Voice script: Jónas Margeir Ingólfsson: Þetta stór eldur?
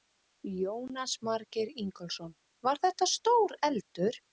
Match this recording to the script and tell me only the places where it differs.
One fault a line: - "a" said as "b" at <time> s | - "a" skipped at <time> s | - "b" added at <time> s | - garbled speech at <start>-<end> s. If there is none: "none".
- "Var" added at 2.7 s